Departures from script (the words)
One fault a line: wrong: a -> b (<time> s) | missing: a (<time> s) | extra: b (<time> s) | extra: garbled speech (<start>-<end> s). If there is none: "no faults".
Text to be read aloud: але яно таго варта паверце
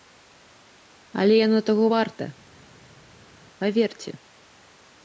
no faults